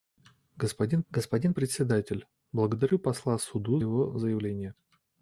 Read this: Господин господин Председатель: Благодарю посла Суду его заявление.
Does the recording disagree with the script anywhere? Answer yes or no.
no